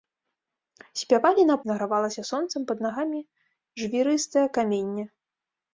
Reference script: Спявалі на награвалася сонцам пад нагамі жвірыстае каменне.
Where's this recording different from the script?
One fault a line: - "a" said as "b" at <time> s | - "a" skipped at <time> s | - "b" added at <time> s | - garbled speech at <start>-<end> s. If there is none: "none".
none